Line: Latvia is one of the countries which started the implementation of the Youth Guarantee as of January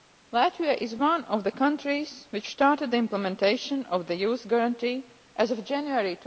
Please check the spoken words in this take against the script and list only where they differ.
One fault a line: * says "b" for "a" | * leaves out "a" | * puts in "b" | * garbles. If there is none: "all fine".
all fine